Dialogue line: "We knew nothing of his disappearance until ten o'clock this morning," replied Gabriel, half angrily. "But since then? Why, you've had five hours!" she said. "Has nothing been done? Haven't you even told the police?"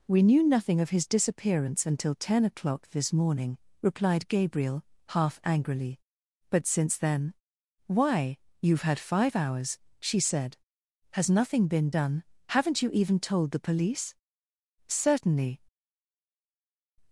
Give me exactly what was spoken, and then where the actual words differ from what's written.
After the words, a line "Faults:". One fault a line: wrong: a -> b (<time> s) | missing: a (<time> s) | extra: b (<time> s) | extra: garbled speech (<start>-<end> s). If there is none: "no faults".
"We knew nothing of his disappearance until ten o'clock this morning," replied Gabriel, half angrily. "But since then? Why, you've had five hours!" she said. "Has nothing been done? Haven't you even told the police?" "Certainly
Faults:
extra: Certainly (14.9 s)